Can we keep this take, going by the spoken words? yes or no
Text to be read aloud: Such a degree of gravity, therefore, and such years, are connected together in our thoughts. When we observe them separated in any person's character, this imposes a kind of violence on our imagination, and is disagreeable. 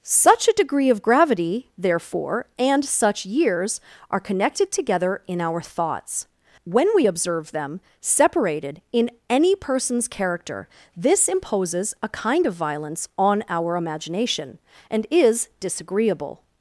yes